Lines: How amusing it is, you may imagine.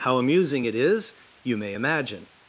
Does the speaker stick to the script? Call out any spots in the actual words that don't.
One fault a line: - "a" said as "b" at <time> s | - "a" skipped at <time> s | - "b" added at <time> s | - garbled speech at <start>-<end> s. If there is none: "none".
none